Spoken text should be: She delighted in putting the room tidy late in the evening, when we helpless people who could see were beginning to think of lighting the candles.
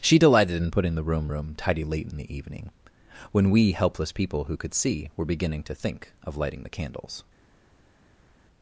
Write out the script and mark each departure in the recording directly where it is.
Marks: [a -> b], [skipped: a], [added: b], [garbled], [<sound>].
She delighted in putting the room [added: room] tidy late in the evening, when we helpless people who could see were beginning to think of lighting the candles.